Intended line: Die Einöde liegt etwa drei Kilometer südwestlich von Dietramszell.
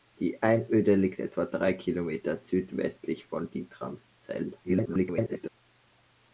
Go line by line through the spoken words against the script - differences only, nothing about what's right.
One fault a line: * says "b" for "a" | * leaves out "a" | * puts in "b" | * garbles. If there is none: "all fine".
* garbles